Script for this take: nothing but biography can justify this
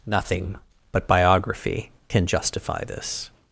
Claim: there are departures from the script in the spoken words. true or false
false